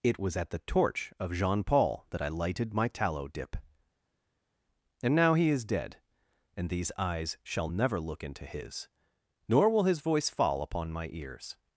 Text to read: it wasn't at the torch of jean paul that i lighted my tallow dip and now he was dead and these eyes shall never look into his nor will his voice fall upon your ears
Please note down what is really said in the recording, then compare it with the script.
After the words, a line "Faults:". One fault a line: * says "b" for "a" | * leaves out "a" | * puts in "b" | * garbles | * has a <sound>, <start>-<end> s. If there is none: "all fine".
it was at the torch of jean paul that i lighted my tallow dip and now he is dead and these eyes shall never look into his nor will his voice fall upon my ears
Faults:
* says "was" for "wasn't"
* says "is" for "was"
* says "my" for "your"